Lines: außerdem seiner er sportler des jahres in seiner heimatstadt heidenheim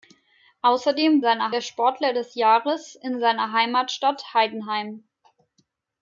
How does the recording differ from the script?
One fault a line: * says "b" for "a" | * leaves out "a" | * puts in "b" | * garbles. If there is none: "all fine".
all fine